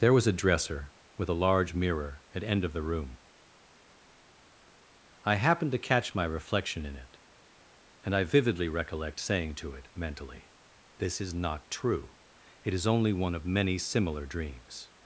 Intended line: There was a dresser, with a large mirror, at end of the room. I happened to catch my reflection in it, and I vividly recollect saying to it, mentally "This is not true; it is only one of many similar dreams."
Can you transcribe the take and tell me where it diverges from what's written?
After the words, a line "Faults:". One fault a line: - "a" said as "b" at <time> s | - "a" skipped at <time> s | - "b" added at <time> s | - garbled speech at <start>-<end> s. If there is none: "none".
There was a dresser, with a large mirror, at end of the room. I happened to catch my reflection in it, and I vividly recollect saying to it, mentally "This is not true; it is only one of many similar dreams."
Faults:
none